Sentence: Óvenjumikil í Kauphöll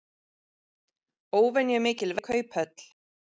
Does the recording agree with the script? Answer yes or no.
yes